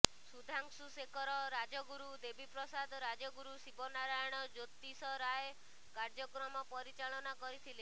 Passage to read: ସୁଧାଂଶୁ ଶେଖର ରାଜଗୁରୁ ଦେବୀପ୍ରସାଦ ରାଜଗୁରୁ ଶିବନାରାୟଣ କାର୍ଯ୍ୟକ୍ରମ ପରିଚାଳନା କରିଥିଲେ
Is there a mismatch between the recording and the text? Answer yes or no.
yes